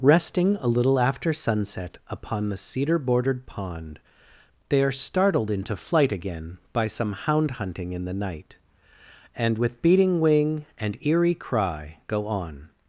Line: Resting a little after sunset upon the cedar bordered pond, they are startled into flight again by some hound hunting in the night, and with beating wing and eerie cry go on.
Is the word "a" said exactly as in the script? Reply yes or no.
yes